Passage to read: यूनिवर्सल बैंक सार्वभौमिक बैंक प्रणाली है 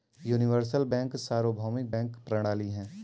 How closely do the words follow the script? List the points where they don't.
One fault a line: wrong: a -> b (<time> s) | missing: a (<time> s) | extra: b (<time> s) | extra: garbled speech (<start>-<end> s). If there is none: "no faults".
no faults